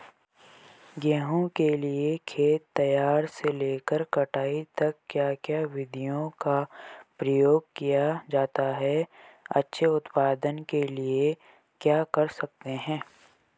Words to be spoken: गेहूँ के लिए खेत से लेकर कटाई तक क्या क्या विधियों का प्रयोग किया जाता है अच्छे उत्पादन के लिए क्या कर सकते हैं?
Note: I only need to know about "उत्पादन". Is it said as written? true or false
true